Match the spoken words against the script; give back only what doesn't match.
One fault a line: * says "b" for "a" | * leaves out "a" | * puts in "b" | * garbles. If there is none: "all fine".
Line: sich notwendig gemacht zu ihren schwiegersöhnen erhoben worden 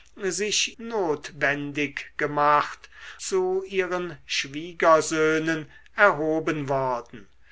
all fine